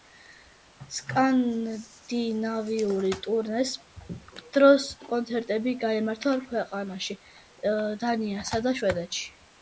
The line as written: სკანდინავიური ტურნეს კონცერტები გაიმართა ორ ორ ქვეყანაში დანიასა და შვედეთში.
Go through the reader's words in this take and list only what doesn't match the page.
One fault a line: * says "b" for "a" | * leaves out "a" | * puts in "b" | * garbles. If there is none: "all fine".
* puts in "დროს"
* leaves out "ორ"